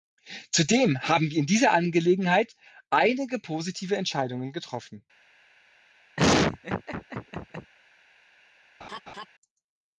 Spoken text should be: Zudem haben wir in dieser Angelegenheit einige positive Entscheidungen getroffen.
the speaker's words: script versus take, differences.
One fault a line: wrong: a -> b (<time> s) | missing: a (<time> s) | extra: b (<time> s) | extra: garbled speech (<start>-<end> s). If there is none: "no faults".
no faults